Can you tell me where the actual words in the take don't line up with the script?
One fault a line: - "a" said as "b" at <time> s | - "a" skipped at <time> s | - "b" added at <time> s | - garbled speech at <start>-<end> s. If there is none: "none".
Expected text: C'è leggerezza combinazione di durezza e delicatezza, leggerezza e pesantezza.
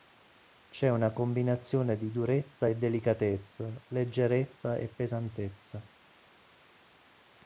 - "leggerezza" said as "una" at 0.9 s